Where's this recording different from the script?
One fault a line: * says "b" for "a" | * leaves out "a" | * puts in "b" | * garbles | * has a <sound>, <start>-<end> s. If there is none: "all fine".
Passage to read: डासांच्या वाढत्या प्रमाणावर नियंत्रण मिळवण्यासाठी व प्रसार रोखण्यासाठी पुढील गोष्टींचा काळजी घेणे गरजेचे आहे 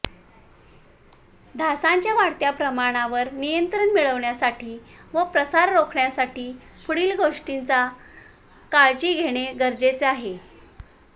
all fine